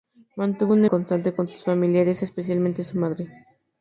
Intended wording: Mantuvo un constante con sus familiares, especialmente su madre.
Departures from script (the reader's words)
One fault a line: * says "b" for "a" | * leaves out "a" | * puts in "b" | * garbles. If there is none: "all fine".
all fine